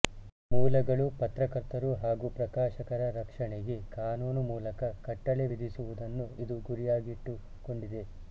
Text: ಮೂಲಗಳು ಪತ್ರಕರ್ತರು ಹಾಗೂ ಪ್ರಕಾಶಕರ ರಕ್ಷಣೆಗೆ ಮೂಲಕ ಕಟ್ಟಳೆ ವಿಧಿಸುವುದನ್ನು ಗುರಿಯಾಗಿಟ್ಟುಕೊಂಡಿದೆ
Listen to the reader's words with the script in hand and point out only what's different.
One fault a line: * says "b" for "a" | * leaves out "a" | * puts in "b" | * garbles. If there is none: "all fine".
* puts in "ಕಾನೂನು"
* puts in "ಇದು"